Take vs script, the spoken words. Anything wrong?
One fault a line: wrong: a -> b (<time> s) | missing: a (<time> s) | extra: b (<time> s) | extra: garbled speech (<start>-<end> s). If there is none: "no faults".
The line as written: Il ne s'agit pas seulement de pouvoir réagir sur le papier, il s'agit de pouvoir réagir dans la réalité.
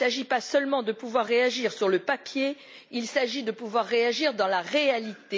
no faults